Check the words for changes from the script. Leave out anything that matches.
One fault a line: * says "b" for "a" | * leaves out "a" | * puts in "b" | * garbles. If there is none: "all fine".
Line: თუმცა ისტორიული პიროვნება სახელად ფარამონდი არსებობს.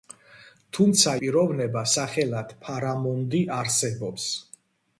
* leaves out "ისტორიული"